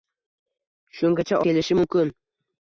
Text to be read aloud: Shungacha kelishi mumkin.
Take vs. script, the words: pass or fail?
pass